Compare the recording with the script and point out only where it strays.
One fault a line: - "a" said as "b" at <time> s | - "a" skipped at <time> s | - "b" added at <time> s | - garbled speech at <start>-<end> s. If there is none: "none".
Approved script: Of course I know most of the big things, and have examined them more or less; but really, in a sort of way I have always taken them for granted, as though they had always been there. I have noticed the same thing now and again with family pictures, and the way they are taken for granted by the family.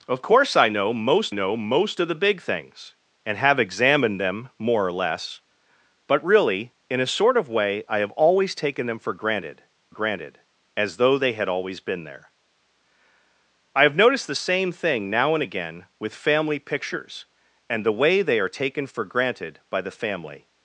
- "know most" added at 1.3 s
- "granted" added at 9.9 s